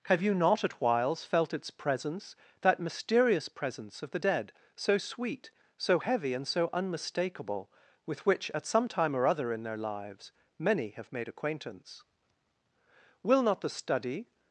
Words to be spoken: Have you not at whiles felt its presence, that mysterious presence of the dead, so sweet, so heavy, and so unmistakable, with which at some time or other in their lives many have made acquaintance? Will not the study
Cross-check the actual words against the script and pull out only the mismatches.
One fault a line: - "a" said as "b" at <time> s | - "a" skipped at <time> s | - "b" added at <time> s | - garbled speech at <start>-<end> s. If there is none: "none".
none